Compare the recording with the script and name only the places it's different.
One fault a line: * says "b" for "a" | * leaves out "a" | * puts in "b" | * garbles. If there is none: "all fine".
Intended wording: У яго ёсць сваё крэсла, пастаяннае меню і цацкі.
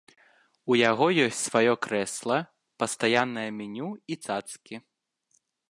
all fine